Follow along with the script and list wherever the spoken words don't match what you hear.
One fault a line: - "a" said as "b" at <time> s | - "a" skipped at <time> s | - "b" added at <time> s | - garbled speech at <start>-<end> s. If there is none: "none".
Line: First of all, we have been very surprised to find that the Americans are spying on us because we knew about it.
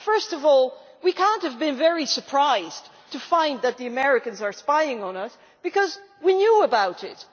- "cannot" added at 1.1 s